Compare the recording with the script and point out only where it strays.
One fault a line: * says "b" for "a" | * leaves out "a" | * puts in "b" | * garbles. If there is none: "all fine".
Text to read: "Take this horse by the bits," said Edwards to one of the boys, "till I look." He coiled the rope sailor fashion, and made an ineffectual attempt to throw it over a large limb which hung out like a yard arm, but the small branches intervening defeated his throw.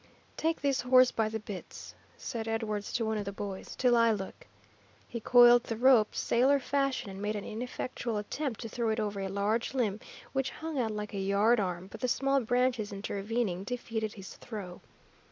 all fine